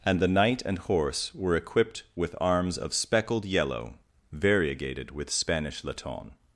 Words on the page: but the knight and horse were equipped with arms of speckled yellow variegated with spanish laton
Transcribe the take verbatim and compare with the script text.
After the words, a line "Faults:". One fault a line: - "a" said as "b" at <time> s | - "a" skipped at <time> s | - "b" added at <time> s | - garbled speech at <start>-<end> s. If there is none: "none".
and the knight and horse were equipped with arms of speckled yellow variegated with spanish laton
Faults:
- "but" said as "and" at 0.0 s